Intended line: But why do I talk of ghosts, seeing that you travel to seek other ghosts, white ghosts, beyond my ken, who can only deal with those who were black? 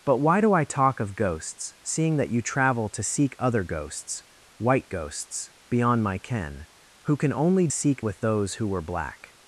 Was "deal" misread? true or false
true